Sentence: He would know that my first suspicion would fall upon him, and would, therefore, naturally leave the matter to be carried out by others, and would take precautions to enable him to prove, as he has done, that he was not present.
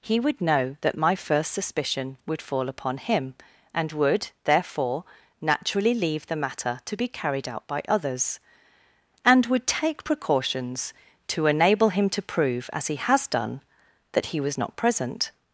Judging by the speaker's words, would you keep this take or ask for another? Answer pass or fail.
pass